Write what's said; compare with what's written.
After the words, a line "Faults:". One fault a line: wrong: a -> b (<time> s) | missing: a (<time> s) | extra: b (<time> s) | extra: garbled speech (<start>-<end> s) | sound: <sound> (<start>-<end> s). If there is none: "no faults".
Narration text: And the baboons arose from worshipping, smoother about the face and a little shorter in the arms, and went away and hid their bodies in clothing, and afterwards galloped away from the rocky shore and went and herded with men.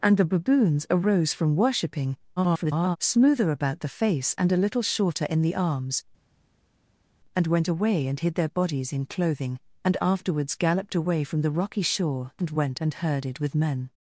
And the baboons arose from worshipping, [garbled] smoother about the face and a little shorter in the arms, and went away and hid their bodies in clothing, and afterwards galloped away from the rocky shore and went and herded with men.
Faults:
extra: garbled speech (2.4-3.0 s)